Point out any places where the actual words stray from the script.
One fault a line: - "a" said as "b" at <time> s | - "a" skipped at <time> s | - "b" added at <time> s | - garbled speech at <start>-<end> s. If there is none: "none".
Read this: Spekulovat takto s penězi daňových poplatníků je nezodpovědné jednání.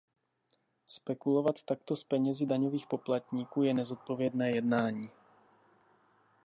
none